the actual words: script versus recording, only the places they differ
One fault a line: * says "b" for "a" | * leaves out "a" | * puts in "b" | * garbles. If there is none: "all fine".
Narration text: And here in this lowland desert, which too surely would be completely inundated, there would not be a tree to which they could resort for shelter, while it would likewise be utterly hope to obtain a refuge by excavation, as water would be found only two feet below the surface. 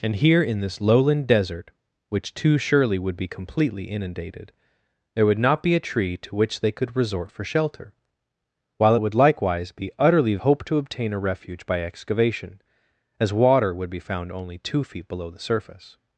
all fine